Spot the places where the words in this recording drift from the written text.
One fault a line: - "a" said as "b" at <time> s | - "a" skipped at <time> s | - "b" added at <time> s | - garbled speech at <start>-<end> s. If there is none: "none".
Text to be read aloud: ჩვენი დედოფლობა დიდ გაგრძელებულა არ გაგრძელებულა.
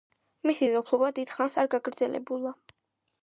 - "ჩვენი" said as "მისი" at 0.5 s
- "გაგრძელებულა" said as "ხანს" at 1.4 s